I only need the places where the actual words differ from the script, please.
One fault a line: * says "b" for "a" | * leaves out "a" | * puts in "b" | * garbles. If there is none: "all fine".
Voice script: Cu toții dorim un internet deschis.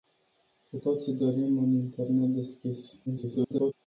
* garbles